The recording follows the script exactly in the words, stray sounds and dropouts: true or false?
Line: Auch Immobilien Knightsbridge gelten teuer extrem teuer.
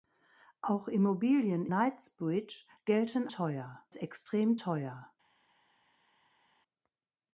true